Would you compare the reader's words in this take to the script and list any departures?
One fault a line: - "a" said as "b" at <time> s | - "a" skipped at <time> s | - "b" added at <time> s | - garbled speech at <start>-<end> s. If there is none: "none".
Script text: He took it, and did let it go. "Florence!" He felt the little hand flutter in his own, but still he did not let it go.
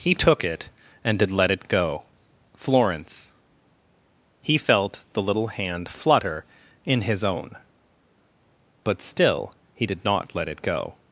none